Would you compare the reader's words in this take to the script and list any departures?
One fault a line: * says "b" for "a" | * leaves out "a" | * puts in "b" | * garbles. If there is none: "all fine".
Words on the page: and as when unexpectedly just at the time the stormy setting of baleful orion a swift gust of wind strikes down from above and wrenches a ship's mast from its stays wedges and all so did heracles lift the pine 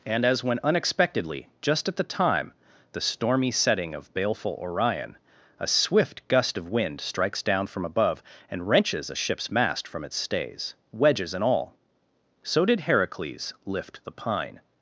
all fine